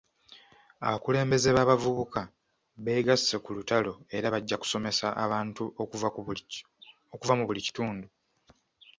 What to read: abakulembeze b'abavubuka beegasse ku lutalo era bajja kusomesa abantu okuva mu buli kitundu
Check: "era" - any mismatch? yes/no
no